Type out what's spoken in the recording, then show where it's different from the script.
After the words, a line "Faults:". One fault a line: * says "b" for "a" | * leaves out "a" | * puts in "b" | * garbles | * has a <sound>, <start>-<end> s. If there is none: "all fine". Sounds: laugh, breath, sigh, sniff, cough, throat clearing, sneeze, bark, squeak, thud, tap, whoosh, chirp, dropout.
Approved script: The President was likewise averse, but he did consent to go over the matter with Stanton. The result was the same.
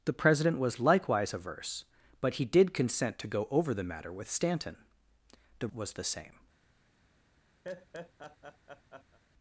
The President was likewise averse, but he did consent to go over the matter with Stanton. The was the same.
Faults:
* leaves out "result"
* has a laugh, 7.6-9.2 s